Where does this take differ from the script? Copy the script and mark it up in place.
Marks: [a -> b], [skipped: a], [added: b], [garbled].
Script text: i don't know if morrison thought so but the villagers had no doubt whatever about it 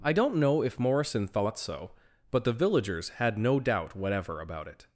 i don't know if morrison thought so but the villagers had no doubt whatever about it